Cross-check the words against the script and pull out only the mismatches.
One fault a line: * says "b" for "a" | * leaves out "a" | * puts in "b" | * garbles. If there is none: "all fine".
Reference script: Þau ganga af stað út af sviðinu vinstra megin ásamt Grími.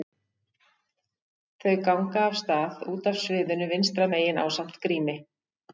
all fine